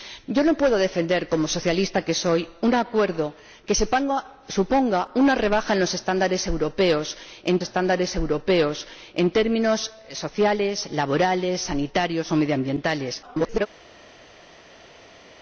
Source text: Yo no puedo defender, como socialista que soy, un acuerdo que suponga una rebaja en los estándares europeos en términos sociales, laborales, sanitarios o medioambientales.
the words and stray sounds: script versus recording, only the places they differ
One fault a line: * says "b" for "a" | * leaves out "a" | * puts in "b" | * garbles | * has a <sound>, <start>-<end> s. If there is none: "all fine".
* puts in "estándares europeos en"
* garbles